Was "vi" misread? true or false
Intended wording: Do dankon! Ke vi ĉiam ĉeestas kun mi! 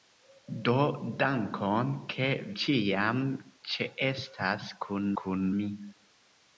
true